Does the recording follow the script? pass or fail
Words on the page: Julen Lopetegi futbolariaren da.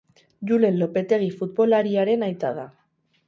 fail